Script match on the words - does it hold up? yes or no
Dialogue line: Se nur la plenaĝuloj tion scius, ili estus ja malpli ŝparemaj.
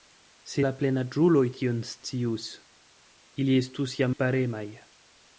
no